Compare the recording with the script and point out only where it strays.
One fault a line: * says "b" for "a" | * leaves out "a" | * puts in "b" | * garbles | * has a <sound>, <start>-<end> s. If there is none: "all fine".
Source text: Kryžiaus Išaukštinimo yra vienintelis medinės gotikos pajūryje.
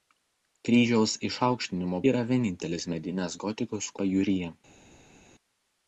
all fine